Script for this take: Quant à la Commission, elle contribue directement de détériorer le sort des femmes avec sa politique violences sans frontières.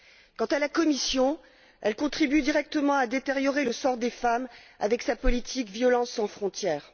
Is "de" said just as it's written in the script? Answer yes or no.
no